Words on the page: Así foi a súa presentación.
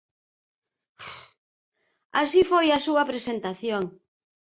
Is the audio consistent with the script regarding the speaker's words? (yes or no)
yes